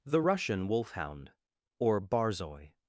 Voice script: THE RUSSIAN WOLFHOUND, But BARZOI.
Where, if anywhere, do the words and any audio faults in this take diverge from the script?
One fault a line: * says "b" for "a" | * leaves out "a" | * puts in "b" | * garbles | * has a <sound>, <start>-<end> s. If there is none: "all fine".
* says "OR" for "But"